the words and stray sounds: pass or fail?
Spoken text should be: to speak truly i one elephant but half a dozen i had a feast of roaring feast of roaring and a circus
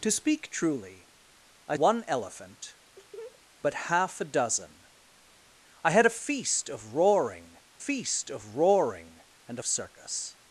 fail